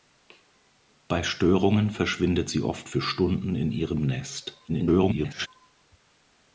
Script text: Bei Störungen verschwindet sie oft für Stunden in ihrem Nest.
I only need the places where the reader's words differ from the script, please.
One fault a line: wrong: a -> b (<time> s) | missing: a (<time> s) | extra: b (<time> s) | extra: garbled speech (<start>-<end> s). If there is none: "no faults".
extra: garbled speech (4.7-5.5 s)